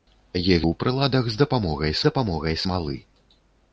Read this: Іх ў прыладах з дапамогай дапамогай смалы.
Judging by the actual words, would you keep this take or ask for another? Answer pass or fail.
pass